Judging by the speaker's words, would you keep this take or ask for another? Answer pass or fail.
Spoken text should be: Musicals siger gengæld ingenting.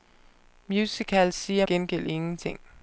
pass